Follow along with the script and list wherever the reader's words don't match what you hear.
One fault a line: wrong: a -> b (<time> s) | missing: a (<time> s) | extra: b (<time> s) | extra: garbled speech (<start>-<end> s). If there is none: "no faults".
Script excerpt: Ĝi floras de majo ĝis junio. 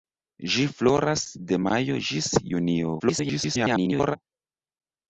extra: garbled speech (3.0-4.2 s)